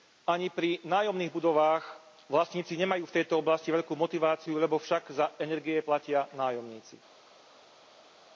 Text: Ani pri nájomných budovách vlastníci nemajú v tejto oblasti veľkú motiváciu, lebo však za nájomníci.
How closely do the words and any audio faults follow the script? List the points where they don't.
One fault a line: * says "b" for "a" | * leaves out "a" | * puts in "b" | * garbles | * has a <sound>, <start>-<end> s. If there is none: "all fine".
* puts in "energie platia"